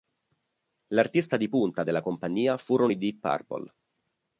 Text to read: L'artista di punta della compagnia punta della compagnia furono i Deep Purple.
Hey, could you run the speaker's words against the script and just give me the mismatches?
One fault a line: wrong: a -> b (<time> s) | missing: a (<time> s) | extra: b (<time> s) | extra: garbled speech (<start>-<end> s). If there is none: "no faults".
missing: punta della compagnia (2.6 s)